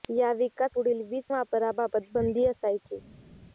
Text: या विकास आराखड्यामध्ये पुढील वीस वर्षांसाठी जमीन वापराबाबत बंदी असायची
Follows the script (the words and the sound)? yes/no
no